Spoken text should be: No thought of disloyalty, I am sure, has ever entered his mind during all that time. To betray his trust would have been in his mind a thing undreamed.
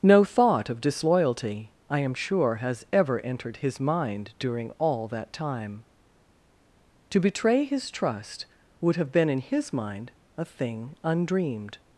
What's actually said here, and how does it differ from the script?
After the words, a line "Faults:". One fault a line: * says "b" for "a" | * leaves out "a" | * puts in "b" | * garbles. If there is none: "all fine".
No thought of disloyalty, I am sure, has ever entered his mind during all that time. To betray his trust would have been in his mind a thing undreamed.
Faults:
all fine